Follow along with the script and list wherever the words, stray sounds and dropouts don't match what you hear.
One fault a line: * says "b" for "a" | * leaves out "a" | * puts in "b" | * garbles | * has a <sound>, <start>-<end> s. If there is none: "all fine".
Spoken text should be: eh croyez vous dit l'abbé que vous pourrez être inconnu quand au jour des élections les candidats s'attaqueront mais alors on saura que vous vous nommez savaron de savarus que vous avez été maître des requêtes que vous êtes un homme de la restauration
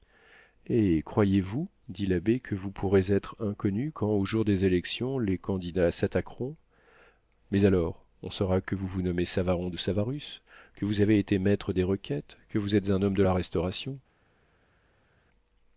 all fine